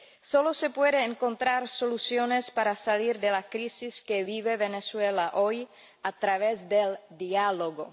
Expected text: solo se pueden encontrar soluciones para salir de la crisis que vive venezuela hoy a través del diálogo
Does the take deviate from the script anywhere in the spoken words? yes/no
no